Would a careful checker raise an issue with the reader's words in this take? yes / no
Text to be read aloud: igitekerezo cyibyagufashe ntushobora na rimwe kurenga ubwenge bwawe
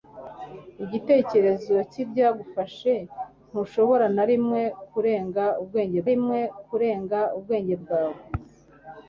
yes